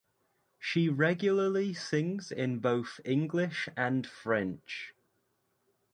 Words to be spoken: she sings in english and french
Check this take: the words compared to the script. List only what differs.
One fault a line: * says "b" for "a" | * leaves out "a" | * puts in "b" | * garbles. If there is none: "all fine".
* puts in "regularly"
* puts in "both"